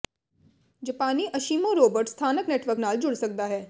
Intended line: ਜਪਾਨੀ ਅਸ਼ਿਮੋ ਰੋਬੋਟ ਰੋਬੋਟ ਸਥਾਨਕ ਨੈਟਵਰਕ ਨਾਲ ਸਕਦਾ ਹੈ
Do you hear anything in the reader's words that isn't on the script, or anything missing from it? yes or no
yes